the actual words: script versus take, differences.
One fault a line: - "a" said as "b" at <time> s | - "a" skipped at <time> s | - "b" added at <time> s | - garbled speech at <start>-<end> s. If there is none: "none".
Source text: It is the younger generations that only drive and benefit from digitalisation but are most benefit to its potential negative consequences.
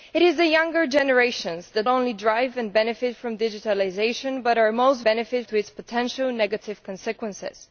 none